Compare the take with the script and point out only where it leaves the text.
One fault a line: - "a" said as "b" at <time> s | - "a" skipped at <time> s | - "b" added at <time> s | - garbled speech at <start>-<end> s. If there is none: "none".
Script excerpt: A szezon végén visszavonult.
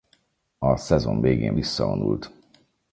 none